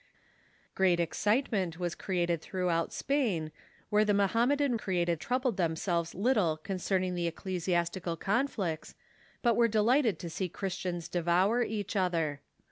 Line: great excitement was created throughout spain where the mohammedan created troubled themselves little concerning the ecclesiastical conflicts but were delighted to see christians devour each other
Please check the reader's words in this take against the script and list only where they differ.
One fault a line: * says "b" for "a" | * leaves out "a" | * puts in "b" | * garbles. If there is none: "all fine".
all fine